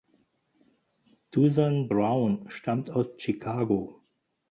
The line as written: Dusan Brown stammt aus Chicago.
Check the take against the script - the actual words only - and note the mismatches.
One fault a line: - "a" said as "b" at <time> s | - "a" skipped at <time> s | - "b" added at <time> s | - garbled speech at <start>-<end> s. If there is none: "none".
none